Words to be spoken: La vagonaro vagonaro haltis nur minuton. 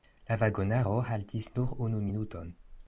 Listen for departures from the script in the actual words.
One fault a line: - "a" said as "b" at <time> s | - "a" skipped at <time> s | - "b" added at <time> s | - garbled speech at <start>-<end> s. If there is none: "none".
- "vagonaro" skipped at 0.9 s
- "unu" added at 1.9 s